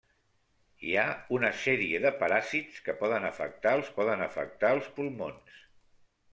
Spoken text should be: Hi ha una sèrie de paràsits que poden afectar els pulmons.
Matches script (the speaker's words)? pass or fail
fail